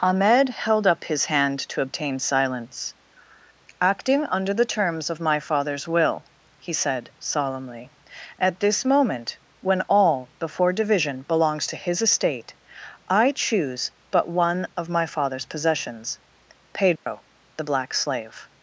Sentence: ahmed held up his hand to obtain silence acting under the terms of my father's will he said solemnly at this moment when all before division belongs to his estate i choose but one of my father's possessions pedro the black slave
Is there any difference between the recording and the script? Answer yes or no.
no